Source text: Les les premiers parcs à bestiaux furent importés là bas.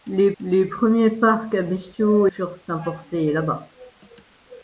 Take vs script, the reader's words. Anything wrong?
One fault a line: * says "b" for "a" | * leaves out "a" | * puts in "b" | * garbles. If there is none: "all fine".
all fine